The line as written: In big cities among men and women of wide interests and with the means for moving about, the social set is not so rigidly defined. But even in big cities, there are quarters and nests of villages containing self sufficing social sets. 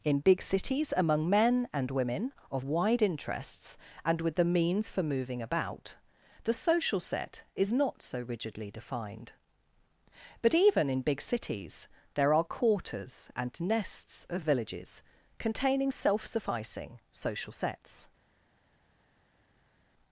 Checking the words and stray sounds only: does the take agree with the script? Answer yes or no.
yes